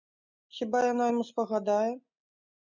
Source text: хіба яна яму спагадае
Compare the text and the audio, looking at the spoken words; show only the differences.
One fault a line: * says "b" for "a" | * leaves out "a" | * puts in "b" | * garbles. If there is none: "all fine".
all fine